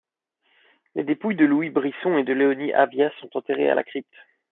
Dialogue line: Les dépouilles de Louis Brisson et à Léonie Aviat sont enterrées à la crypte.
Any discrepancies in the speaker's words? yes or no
yes